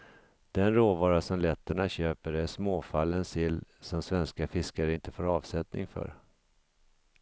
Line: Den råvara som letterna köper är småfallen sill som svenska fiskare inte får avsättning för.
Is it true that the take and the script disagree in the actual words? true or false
false